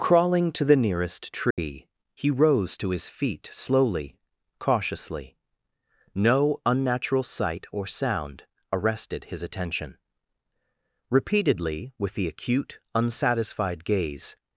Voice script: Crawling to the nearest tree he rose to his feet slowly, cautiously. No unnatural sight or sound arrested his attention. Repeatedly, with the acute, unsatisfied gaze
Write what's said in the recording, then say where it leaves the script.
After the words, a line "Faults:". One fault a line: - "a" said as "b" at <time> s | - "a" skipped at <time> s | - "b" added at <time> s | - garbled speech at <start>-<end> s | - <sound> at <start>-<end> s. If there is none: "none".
Crawling to the nearest tree he rose to his feet slowly, cautiously. No unnatural sight or sound arrested his attention. Repeatedly, with the acute, unsatisfied gaze
Faults:
- dropout at 1.5-1.6 s